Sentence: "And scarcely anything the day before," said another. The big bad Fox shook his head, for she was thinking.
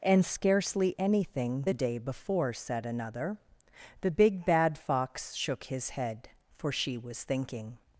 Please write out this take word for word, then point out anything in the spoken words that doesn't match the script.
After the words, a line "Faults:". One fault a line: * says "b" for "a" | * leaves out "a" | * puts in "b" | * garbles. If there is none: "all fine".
"And scarcely anything the day before," said another. The big bad Fox shook his head, for she was thinking.
Faults:
all fine